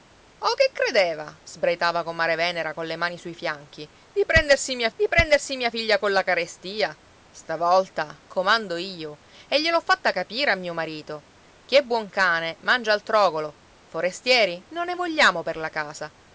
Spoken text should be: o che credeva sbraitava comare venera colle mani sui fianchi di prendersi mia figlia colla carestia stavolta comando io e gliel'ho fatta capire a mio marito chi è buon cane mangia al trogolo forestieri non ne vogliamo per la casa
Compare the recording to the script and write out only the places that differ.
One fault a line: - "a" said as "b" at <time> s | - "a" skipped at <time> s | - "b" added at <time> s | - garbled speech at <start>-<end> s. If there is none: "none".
- "di prendersi mia" added at 4.9 s